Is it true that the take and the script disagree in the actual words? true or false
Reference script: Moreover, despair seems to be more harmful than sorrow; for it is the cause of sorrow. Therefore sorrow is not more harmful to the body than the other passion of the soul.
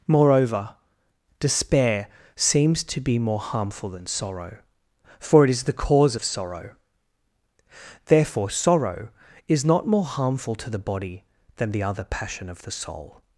false